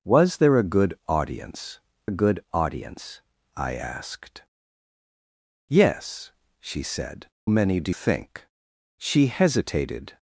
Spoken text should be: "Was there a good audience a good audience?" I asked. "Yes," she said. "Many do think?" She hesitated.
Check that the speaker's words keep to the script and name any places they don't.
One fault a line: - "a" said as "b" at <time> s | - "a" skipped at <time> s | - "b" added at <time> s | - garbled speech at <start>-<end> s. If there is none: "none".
none